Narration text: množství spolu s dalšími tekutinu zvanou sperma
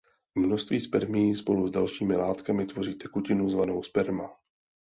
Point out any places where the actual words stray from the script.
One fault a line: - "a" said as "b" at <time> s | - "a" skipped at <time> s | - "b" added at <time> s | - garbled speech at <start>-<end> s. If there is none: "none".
- "spermií" added at 0.8 s
- "látkami tvoří" added at 2.1 s